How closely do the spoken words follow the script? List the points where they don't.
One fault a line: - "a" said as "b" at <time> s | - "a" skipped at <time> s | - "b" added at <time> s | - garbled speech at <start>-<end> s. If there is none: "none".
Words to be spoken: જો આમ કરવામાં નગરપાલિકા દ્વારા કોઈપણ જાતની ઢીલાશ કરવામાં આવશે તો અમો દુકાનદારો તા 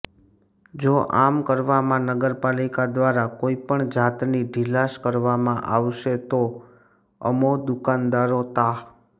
none